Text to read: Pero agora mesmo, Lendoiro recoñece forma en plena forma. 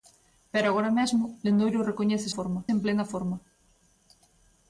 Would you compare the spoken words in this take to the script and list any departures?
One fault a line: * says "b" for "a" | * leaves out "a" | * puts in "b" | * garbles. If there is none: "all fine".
all fine